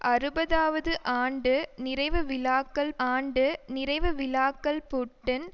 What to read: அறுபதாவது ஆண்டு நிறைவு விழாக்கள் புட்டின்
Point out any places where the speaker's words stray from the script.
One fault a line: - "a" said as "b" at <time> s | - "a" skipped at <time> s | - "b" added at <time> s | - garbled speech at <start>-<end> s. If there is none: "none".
- "ஆண்டு நிறைவு விழாக்கள்" added at 3.1 s